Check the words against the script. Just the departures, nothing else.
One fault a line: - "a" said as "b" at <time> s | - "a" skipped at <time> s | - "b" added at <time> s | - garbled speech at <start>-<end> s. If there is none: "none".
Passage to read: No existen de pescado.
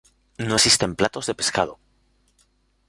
- "platos" added at 1.0 s